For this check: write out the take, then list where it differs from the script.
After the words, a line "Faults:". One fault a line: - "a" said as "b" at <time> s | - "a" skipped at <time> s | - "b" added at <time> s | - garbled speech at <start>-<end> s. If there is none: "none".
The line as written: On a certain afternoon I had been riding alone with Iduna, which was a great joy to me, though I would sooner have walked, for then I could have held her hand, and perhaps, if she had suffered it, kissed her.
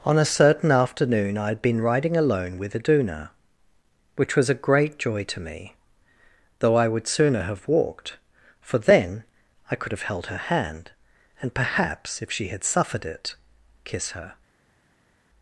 On a certain afternoon I had been riding alone with Iduna, which was a great joy to me, though I would sooner have walked, for then I could have held her hand, and perhaps, if she had suffered it, kiss her.
Faults:
- "kissed" said as "kiss" at 13.8 s